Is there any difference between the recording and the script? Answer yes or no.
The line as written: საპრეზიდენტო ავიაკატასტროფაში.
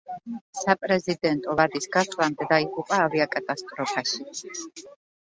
yes